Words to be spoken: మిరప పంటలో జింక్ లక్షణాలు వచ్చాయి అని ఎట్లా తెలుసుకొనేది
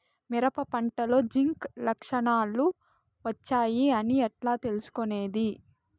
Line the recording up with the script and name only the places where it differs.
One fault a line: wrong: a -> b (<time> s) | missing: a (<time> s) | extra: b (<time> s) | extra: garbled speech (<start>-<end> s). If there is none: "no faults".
no faults